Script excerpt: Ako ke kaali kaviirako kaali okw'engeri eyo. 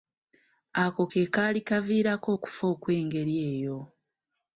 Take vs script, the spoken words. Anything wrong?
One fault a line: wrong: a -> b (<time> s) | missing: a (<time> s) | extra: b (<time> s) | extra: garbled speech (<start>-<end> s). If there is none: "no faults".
wrong: kaali -> okufa (2.3 s)